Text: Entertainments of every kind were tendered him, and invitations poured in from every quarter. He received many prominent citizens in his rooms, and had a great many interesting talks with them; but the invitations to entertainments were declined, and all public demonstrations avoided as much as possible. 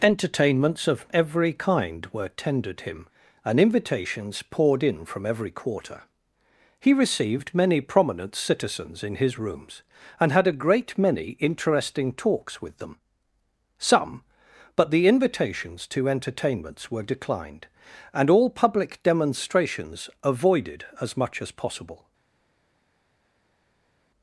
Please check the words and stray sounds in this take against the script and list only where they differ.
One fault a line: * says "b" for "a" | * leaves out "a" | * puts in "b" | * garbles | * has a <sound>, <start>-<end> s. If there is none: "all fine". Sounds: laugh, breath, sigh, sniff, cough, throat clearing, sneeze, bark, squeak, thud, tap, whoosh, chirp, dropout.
* puts in "some"